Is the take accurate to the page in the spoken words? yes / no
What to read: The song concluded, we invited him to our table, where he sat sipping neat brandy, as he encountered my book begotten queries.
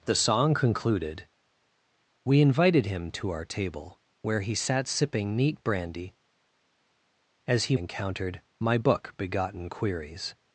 yes